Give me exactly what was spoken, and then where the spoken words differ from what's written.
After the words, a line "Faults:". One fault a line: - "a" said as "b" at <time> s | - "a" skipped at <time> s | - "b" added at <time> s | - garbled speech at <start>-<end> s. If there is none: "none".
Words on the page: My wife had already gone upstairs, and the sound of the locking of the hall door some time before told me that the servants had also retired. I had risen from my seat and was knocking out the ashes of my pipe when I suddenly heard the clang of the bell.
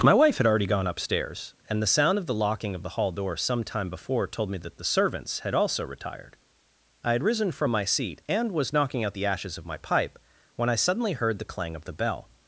My wife had already gone upstairs, and the sound of the locking of the hall door some time before told me that the servants had also retired. I had risen from my seat and was knocking out the ashes of my pipe when I suddenly heard the clang of the bell.
Faults:
none